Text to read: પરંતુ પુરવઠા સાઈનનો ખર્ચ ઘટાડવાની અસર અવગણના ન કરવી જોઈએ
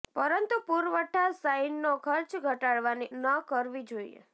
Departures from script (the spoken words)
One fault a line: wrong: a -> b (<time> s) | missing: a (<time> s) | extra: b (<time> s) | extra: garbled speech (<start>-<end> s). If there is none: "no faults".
missing: અસર અવગણના (3.1 s)